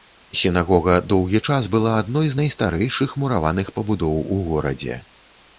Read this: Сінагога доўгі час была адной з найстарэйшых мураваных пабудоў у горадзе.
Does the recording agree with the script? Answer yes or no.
yes